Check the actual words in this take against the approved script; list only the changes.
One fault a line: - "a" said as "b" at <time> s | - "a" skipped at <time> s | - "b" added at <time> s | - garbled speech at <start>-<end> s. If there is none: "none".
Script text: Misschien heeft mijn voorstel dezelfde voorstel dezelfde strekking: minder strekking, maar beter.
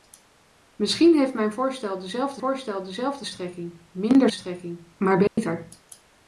none